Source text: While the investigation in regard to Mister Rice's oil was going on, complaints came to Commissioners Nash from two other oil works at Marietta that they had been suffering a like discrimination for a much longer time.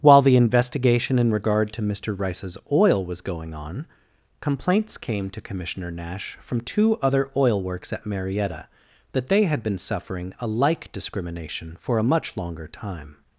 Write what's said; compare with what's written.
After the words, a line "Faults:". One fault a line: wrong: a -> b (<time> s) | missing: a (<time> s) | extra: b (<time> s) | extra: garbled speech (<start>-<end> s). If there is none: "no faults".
While the investigation in regard to Mister Rice's oil was going on, complaints came to Commissioner Nash from two other oil works at Marietta that they had been suffering a like discrimination for a much longer time.
Faults:
wrong: Commissioners -> Commissioner (5.4 s)